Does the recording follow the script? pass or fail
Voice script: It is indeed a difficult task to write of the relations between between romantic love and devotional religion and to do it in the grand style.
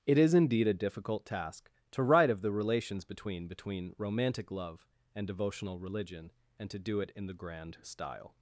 pass